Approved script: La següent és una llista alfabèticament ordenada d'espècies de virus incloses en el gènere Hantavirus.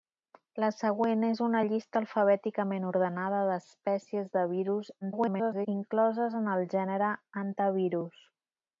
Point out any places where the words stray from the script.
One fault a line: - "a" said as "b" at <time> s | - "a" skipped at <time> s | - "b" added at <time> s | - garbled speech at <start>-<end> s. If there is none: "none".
- garbled speech at 5.0-5.7 s